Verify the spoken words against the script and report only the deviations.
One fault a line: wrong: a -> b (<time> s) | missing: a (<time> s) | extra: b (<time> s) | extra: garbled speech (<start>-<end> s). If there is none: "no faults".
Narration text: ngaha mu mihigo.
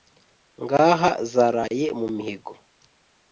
extra: zaraye (1.3 s)